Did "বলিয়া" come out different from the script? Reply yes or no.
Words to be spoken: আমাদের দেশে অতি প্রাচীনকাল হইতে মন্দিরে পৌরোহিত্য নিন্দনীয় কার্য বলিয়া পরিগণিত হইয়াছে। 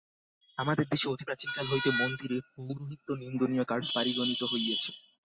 yes